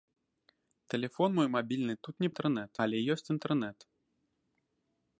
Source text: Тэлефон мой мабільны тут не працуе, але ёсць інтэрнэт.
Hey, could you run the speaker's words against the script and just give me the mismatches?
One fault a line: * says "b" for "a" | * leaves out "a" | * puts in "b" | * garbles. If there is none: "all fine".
* says "інтэрнэт" for "працуе"